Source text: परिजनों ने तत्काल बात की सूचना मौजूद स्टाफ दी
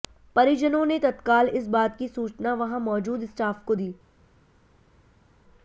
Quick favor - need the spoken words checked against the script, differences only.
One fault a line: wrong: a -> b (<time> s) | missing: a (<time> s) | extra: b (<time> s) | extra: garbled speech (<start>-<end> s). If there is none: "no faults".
extra: इस (1.5 s)
extra: वहां (2.5 s)
extra: को (3.6 s)